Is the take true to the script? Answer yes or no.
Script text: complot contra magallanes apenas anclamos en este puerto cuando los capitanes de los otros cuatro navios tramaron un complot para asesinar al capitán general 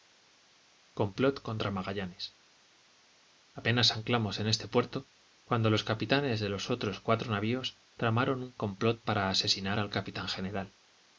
yes